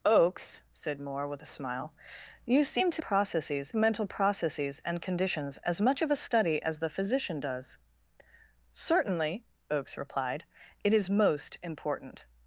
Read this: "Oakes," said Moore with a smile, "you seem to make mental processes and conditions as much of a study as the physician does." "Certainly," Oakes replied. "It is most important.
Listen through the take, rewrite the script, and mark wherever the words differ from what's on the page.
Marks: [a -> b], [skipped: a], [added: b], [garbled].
"Oakes," said Moore with a smile, "you seem to [make -> processes] mental processes and conditions as much of a study as the physician does." "Certainly," Oakes replied. "It is most important.